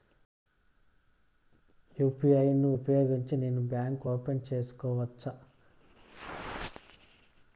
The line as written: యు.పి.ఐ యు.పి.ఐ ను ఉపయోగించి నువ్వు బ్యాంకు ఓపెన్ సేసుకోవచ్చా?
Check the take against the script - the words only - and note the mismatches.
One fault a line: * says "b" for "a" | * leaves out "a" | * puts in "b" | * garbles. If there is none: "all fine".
* leaves out "యు.పి.ఐ"
* says "నేను" for "నువ్వు"